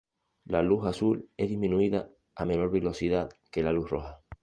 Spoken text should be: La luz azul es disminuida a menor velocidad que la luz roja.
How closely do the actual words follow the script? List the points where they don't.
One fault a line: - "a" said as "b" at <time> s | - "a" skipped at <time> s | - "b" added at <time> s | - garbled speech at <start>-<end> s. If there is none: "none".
none